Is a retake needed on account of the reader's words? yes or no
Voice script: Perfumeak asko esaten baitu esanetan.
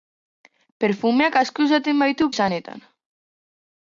no